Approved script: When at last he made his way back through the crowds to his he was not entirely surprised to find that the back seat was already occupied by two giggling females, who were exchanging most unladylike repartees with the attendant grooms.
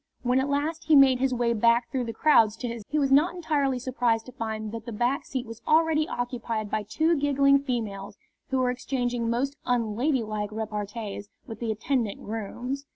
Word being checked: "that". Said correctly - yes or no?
yes